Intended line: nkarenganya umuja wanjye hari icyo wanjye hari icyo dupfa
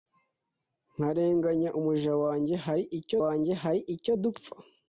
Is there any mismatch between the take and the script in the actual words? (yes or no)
no